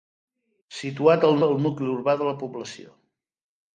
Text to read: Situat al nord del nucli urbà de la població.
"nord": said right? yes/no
no